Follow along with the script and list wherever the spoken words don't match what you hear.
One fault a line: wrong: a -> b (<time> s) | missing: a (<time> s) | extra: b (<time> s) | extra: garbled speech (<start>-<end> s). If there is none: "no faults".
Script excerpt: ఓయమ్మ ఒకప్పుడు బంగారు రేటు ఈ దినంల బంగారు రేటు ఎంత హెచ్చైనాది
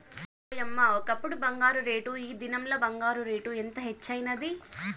no faults